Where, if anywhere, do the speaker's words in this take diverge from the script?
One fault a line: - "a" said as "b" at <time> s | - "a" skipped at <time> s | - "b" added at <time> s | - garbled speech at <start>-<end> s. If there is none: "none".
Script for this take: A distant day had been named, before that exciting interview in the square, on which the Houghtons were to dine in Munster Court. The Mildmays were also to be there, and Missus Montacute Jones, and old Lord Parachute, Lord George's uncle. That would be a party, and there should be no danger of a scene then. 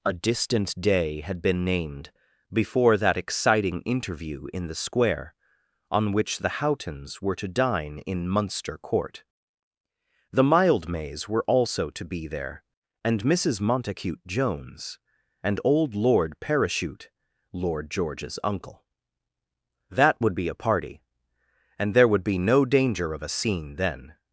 - "should" said as "would" at 22.1 s